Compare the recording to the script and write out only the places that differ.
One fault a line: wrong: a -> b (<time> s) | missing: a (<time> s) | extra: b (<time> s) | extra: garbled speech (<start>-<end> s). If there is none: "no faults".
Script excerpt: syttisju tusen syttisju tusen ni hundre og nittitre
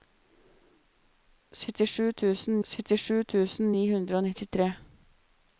no faults